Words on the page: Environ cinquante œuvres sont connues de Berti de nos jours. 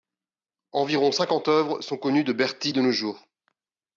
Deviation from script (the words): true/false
false